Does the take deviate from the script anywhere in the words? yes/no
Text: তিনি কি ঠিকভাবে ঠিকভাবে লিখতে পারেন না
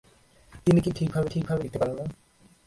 no